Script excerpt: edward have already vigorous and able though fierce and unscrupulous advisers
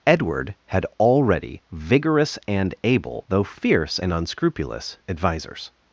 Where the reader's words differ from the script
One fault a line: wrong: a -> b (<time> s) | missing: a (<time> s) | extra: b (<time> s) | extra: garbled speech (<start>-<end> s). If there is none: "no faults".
wrong: have -> had (0.7 s)